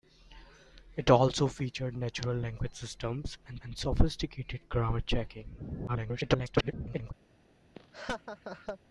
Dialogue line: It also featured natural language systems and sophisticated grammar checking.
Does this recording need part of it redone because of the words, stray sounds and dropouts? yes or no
yes